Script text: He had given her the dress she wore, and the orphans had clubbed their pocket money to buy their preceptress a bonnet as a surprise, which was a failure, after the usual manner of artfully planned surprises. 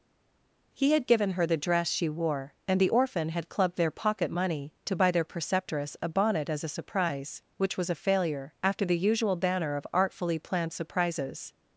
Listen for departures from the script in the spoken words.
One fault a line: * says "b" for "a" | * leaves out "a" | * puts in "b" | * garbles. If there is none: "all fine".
* says "orphan" for "orphans"
* says "banner" for "manner"